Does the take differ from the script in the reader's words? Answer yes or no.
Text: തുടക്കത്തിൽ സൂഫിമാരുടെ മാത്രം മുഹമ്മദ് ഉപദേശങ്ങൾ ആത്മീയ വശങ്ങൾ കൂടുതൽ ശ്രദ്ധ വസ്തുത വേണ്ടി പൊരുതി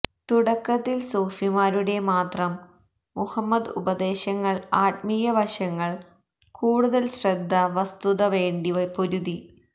no